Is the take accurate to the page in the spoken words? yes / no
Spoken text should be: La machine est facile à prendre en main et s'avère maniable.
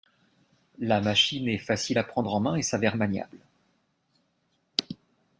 yes